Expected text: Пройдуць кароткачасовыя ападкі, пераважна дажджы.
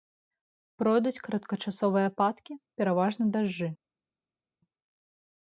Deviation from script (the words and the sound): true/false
false